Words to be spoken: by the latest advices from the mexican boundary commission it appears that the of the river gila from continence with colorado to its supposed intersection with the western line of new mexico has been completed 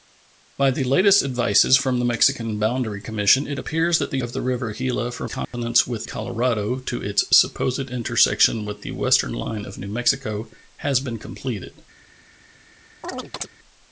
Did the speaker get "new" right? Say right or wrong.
right